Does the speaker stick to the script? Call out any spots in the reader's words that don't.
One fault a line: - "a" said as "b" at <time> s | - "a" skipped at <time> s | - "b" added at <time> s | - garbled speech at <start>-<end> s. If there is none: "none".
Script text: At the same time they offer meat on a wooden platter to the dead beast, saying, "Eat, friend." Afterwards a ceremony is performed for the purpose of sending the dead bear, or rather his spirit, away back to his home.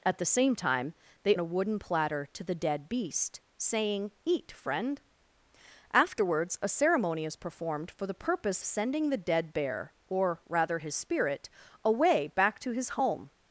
- "offer meat on" skipped at 1.4 s
- "of" skipped at 8.6 s